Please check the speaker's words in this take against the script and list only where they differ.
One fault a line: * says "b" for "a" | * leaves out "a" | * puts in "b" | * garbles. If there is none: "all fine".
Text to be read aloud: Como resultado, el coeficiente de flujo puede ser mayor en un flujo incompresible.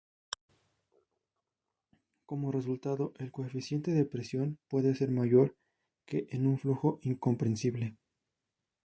* says "presión" for "flujo"
* puts in "que"